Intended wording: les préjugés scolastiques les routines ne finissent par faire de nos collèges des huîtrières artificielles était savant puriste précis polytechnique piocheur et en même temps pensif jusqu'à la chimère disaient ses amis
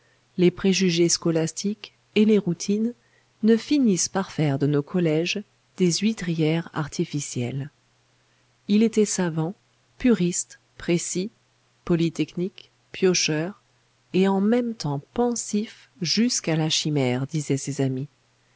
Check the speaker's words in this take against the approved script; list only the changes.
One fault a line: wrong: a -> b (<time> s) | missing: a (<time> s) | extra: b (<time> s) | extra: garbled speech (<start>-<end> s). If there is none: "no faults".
extra: et (2.1 s)
extra: il (8.7 s)